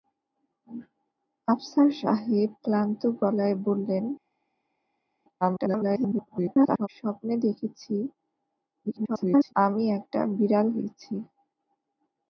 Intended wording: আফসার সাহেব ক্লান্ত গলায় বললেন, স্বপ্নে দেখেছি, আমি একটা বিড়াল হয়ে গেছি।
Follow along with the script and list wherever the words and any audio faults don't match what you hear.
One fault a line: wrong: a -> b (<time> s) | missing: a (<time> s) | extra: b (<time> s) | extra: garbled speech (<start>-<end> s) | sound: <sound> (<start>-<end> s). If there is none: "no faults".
extra: garbled speech (5.4-6.9 s)
extra: garbled speech (8.8-9.5 s)
missing: হয়ে (10.7 s)